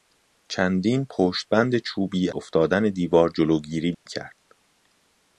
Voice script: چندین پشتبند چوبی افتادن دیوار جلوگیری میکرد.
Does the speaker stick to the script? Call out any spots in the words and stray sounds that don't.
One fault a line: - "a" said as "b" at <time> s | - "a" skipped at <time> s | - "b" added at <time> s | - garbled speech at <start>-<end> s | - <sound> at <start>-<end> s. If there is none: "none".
- dropout at 3.9-4.1 s